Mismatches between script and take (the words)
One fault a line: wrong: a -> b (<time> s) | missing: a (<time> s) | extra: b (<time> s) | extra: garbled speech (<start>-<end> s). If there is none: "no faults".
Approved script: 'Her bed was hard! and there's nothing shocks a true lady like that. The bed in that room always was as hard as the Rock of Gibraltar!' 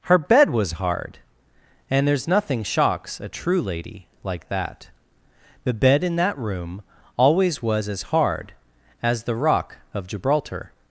no faults